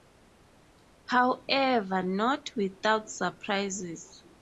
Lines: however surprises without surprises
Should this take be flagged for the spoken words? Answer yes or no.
yes